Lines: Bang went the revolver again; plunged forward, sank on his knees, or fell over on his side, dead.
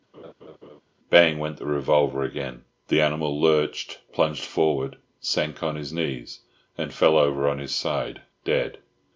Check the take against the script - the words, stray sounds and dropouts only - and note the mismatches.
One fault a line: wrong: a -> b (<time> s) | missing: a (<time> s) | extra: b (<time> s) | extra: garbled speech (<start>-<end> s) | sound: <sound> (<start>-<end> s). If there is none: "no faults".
sound: laugh (0.1-0.8 s)
extra: the animal lurched (2.9 s)
wrong: or -> and (6.8 s)